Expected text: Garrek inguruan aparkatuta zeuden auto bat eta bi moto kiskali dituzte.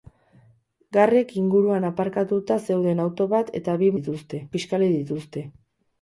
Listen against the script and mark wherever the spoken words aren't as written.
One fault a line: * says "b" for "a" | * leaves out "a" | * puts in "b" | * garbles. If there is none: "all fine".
* says "dituzte" for "moto"